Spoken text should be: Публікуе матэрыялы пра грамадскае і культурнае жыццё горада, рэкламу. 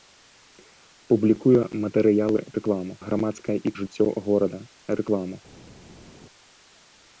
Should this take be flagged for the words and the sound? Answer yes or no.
yes